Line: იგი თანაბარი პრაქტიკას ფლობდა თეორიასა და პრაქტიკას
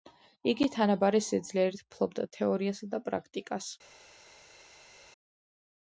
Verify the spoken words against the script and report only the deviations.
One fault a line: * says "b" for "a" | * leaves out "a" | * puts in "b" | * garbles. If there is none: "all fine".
* says "სიძლიერით" for "პრაქტიკას"